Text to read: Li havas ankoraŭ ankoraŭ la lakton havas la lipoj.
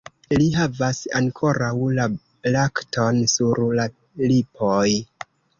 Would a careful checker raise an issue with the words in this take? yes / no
yes